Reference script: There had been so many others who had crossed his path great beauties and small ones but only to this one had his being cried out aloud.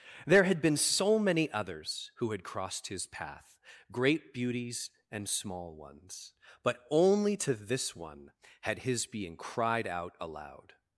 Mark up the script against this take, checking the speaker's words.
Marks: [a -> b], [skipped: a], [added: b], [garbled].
There had been so many others who had crossed his path great beauties and small ones but only to this one had his being cried out aloud.